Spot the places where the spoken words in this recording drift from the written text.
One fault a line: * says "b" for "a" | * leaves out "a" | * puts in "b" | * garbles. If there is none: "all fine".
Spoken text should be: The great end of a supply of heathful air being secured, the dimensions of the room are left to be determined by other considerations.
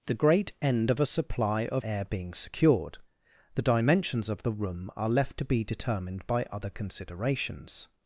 * leaves out "heathful"